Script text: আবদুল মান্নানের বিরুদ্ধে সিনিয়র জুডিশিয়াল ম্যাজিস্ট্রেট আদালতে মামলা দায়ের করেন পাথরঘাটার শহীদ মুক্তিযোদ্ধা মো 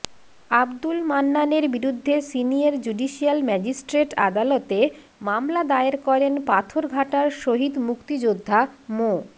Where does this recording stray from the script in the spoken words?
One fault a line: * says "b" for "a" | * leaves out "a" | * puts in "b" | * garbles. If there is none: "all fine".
all fine